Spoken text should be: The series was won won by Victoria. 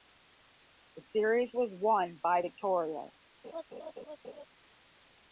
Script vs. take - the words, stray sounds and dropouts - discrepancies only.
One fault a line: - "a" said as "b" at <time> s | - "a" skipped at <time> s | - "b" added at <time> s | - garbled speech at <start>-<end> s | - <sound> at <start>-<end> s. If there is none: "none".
- "won" skipped at 2.2 s
- laugh at 3.4-4.5 s